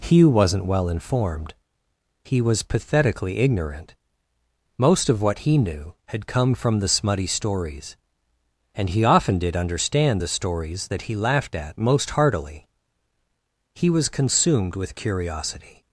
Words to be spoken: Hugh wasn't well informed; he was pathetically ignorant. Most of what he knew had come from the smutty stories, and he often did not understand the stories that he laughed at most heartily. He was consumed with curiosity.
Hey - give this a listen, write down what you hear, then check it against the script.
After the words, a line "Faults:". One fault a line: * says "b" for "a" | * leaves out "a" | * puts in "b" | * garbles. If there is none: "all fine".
Hugh wasn't well informed; he was pathetically ignorant. Most of what he knew had come from the smutty stories, and he often did understand the stories that he laughed at most heartily. He was consumed with curiosity.
Faults:
* leaves out "not"